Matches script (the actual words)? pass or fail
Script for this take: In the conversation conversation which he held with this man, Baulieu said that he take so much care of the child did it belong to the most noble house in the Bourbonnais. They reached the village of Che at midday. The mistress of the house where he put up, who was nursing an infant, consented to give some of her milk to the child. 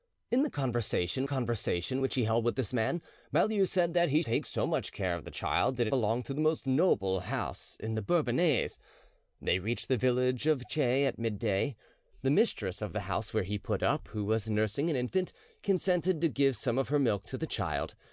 pass